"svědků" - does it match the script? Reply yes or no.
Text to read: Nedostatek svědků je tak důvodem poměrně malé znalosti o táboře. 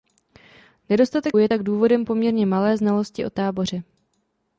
no